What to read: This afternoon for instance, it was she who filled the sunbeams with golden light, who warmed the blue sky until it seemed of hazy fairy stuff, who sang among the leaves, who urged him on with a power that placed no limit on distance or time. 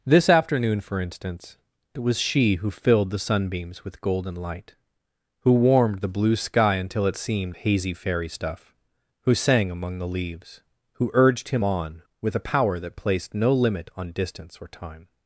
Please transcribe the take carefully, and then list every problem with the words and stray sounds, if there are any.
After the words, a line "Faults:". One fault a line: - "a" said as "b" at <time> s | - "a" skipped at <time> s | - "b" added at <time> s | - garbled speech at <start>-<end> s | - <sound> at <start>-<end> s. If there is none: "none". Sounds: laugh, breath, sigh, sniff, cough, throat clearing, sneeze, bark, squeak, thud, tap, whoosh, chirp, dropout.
This afternoon for instance, it was she who filled the sunbeams with golden light, who warmed the blue sky until it seemed hazy fairy stuff, who sang among the leaves, who urged him on with a power that placed no limit on distance or time.
Faults:
- "of" skipped at 7.5 s